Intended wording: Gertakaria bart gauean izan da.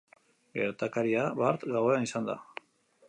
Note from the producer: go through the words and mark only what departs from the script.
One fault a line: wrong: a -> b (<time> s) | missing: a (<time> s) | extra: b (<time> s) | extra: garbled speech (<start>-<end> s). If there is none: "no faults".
no faults